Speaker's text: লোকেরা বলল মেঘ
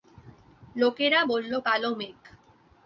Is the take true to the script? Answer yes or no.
no